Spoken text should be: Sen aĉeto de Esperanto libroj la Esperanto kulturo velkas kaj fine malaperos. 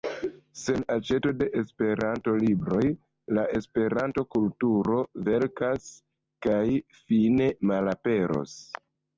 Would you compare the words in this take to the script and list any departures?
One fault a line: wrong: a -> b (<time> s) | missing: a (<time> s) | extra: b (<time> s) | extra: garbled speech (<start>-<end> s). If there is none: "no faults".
no faults